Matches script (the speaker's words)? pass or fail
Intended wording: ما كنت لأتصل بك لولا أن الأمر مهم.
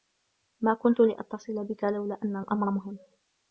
pass